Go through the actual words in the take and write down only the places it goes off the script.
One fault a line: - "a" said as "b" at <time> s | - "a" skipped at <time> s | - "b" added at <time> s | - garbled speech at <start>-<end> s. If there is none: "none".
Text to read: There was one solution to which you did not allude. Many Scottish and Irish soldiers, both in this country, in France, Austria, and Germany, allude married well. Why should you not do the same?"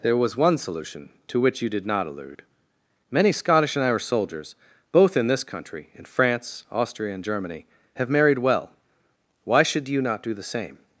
- "allude" said as "have" at 8.0 s